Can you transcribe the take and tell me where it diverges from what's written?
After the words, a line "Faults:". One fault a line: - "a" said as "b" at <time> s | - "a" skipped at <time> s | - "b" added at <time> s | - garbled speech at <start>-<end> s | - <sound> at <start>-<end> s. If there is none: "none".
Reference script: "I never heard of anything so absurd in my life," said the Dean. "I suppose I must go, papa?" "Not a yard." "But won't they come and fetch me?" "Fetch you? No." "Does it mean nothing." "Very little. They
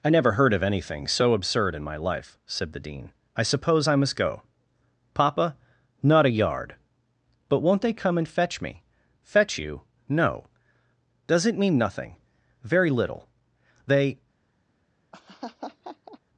"I never heard of anything so absurd in my life," said the Dean. "I suppose I must go, papa?" "Not a yard." "But won't they come and fetch me?" "Fetch you? No." "Does it mean nothing." "Very little. They
Faults:
- laugh at 15.1-16.2 s